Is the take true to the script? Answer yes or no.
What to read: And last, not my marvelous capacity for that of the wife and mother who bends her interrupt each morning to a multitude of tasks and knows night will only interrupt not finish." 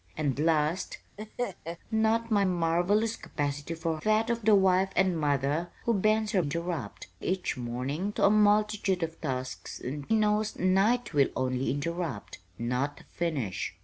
yes